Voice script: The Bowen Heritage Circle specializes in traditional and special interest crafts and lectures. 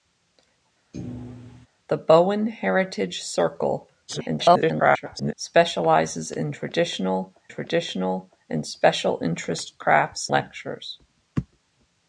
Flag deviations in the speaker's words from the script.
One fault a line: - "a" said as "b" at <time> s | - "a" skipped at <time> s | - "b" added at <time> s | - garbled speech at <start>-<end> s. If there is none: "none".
- garbled speech at 4.1-5.3 s
- "traditional" added at 7.5 s
- "and" skipped at 10.3 s